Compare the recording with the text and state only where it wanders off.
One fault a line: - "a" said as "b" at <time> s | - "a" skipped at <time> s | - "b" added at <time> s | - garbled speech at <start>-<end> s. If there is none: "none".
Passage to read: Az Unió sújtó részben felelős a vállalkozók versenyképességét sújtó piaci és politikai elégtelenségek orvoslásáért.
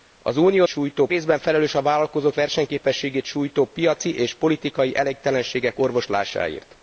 none